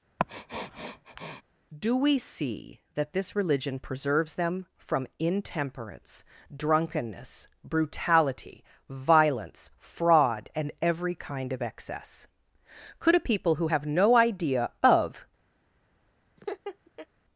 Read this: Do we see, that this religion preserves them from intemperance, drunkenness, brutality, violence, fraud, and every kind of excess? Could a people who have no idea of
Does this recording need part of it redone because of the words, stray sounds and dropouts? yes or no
yes